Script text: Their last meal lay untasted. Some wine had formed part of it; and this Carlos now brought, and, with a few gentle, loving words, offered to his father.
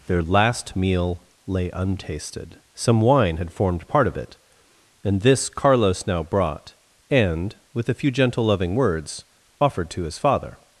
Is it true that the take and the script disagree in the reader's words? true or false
false